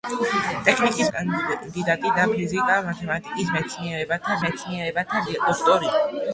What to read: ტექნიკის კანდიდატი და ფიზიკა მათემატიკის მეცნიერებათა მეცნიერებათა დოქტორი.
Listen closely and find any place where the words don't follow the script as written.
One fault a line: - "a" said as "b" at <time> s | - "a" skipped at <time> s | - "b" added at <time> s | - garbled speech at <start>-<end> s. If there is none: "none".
none